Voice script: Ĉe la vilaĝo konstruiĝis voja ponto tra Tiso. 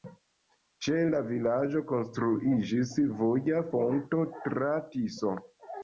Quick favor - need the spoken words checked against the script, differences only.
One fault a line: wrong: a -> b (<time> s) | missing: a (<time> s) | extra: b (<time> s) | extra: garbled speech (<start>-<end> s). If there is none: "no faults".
no faults